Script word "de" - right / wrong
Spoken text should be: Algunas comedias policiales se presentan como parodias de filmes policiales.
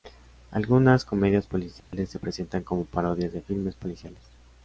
right